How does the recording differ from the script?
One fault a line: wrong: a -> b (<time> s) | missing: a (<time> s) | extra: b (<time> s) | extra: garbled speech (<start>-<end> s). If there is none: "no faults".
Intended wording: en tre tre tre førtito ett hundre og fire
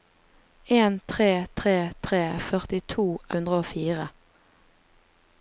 missing: ett (3.1 s)